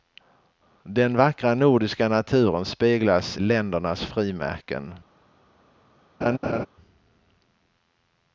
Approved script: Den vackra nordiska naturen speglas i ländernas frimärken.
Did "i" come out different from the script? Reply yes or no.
yes